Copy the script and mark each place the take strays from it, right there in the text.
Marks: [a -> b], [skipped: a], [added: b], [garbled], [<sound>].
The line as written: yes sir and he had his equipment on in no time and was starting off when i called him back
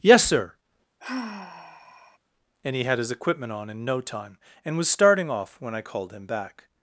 yes sir [sigh] and he had his equipment on in no time and was starting off when i called him back